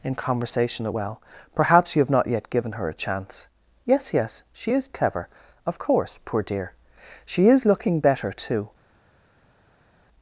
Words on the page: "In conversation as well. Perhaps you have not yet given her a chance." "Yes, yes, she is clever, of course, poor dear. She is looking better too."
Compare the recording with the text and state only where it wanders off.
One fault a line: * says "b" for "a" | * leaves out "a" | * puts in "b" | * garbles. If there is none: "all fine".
* says "at" for "as"